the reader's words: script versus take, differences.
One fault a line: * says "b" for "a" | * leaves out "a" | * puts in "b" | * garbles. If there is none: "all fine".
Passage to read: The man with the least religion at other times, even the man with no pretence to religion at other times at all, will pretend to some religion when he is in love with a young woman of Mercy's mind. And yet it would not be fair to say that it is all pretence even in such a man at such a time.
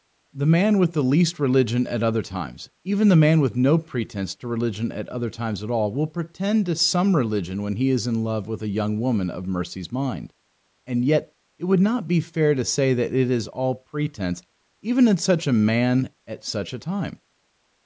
all fine